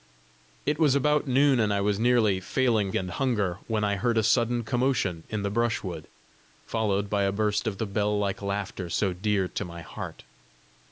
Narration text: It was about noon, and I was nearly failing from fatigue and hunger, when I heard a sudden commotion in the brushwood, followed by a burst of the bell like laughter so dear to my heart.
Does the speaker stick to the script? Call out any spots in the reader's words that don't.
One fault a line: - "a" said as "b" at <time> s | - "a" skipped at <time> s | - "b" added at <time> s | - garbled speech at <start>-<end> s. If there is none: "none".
- "from fatigue" skipped at 2.9 s